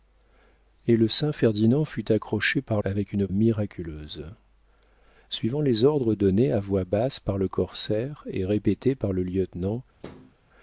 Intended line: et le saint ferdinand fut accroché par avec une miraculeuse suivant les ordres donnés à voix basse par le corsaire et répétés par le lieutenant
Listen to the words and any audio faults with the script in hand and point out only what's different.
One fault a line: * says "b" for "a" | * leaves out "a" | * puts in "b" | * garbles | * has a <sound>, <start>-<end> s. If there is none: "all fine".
* has a thud, 10.0-10.3 s